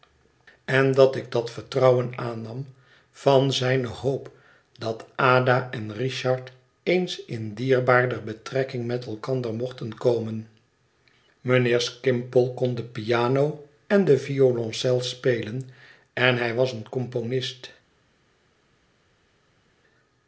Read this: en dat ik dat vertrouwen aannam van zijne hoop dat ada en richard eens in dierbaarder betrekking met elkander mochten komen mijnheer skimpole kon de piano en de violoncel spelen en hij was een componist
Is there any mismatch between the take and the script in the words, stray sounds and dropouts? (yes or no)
no